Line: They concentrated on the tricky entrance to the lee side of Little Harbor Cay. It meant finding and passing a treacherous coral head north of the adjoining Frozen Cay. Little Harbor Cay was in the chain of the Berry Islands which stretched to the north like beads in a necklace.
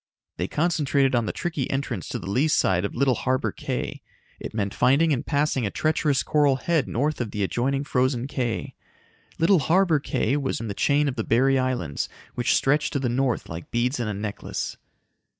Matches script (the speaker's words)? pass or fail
pass